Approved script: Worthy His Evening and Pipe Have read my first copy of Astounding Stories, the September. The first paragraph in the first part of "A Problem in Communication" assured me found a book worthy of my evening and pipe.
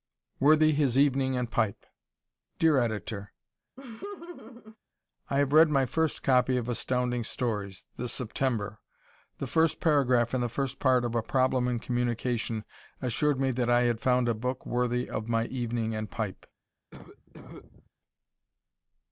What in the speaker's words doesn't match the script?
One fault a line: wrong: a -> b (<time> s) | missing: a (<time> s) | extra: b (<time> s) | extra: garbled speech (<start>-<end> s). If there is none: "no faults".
extra: Dear Editor I (2.6 s)
extra: that I had (13.5 s)